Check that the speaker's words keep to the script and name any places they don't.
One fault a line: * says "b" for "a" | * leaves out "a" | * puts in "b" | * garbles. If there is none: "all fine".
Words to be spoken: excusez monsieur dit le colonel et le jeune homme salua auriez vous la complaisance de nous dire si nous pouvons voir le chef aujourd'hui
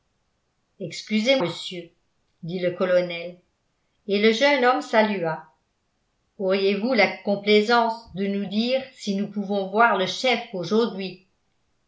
all fine